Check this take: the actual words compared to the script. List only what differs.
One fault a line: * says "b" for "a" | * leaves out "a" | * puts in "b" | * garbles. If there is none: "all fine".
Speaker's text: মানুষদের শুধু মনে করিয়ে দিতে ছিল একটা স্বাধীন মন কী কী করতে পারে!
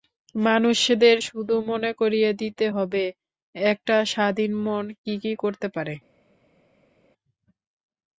* says "হবে" for "ছিল"